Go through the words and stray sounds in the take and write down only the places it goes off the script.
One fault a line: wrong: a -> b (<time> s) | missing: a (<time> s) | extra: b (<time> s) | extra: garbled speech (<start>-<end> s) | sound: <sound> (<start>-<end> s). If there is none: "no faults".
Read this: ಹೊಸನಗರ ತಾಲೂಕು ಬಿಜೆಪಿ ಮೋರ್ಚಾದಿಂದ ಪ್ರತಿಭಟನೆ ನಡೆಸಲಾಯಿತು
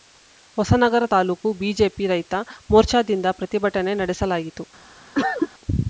extra: ರೈತ (2.1 s)
sound: cough (5.1-5.5 s)